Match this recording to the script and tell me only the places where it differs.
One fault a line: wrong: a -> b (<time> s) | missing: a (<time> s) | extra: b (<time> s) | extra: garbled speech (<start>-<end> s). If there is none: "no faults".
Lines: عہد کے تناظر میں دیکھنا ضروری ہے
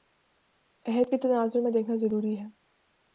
no faults